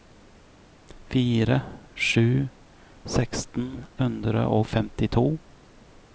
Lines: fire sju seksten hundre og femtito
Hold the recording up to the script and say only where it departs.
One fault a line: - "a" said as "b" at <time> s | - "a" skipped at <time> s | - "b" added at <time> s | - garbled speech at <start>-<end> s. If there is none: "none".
none